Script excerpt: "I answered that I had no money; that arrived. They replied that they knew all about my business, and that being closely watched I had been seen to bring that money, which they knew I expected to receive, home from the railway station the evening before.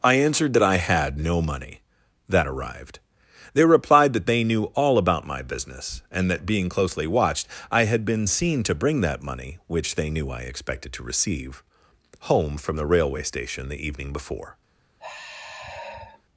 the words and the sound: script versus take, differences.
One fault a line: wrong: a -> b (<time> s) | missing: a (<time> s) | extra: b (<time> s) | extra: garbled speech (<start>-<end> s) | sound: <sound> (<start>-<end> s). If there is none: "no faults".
sound: sigh (15.0-16.2 s)